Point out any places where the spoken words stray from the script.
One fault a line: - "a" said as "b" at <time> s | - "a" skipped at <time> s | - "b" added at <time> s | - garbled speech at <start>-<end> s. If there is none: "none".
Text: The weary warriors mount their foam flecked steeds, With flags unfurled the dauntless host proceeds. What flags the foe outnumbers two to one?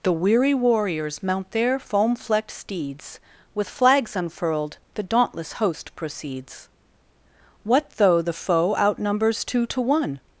- "flags" said as "though" at 8.0 s